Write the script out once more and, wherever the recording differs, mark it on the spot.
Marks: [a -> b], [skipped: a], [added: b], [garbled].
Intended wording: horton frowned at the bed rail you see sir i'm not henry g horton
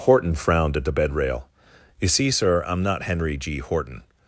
horton frowned at the bed rail you see sir i'm not henry g horton